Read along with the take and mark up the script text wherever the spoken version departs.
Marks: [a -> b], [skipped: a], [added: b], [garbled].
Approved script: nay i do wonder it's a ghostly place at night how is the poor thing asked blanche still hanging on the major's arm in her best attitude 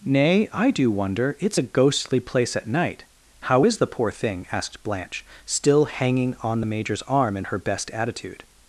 nay i do wonder it's a ghostly place at night how is the poor thing asked blanche still hanging on the major's arm in her best attitude